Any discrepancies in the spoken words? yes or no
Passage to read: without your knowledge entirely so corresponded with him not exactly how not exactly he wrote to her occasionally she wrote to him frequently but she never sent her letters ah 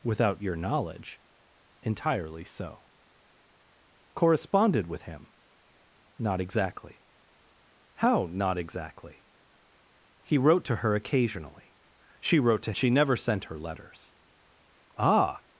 yes